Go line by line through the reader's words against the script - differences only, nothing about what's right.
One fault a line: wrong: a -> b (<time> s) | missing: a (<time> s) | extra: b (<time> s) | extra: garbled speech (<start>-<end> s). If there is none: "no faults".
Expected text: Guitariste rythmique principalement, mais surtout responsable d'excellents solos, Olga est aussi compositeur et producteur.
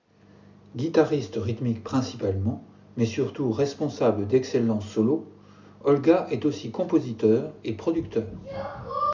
no faults